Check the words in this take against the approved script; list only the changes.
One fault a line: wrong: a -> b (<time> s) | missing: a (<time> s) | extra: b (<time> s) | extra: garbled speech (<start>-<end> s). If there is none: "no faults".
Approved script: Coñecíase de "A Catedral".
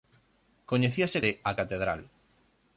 no faults